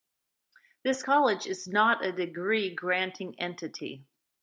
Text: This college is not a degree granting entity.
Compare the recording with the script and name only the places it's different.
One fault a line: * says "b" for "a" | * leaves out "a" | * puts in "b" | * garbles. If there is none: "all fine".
all fine